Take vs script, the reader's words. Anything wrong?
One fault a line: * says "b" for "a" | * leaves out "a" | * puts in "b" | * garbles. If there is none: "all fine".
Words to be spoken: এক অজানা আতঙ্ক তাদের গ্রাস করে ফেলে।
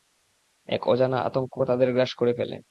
all fine